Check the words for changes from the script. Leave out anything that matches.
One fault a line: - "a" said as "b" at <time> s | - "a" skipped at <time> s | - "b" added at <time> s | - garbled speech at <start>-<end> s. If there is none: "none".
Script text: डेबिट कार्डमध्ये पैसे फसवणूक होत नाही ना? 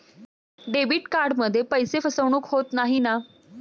none